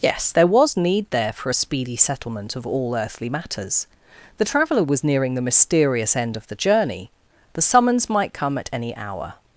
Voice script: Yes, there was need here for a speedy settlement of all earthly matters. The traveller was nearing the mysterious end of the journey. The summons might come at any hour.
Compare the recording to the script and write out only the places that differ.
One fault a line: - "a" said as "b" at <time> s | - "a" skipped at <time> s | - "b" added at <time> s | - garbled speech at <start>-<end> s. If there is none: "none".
- "here" said as "there" at 1.1 s